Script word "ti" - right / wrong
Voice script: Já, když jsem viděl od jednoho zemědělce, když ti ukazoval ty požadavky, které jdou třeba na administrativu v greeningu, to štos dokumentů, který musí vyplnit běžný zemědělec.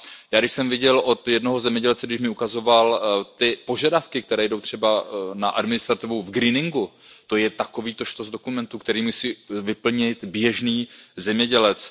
wrong